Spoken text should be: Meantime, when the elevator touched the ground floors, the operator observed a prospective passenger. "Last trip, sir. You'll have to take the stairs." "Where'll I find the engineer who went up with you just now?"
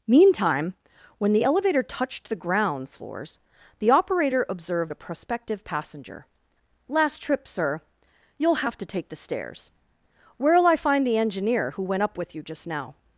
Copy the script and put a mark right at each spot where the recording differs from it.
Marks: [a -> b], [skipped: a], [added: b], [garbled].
Meantime, when the elevator touched the ground floors, the operator observed a prospective passenger. "Last trip, sir. You'll have to take the stairs." "Where'll I find the engineer who went up with you just now?"